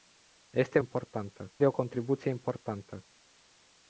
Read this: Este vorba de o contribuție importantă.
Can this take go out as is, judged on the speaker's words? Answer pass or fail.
fail